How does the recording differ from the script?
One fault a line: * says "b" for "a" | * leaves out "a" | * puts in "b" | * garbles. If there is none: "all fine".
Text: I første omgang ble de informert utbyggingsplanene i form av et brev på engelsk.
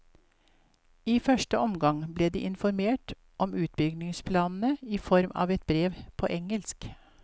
* puts in "om"